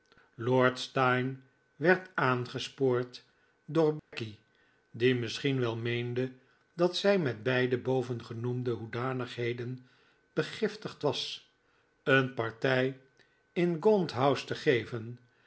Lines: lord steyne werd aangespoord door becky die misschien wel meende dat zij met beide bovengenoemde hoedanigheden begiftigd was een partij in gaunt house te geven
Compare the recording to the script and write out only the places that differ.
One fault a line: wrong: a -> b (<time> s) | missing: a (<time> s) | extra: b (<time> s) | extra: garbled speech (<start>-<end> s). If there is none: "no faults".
no faults